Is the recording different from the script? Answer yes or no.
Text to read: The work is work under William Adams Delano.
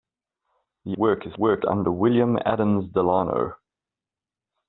no